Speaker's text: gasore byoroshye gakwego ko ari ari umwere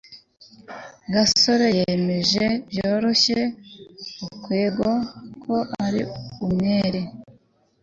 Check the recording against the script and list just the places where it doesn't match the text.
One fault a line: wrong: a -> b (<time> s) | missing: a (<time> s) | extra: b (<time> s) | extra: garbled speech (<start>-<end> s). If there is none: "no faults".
extra: yemeje (1.8 s)
missing: ari (6.0 s)